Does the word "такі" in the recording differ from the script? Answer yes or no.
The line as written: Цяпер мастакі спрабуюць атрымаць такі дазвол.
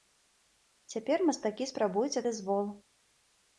yes